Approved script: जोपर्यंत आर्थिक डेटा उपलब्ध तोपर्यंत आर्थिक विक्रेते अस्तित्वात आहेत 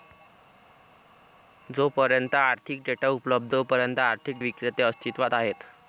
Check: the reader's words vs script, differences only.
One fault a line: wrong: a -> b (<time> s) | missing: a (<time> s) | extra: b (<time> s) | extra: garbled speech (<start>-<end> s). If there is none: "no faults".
no faults